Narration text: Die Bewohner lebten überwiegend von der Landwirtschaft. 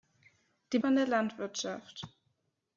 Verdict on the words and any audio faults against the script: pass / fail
fail